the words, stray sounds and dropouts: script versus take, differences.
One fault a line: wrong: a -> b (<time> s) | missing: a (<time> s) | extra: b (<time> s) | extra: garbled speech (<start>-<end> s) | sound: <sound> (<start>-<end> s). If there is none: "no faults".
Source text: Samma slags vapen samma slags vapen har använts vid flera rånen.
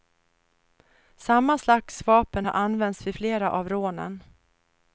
missing: samma slags vapen (2.5 s)
extra: av (3.5 s)